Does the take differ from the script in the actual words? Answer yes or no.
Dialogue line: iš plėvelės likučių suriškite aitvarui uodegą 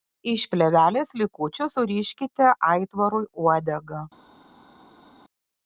no